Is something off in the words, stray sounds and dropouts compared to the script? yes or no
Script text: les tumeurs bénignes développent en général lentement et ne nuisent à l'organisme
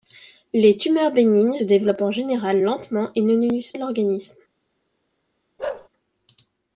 yes